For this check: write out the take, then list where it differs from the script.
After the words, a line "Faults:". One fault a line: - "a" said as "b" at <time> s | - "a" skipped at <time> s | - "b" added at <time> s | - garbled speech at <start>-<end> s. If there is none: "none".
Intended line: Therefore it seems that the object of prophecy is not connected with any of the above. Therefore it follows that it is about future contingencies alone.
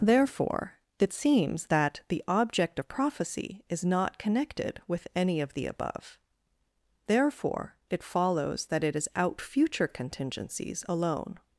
Therefore it seems that the object of prophecy is not connected with any of the above. Therefore it follows that it is out future contingencies alone.
Faults:
- "about" said as "out" at 9.1 s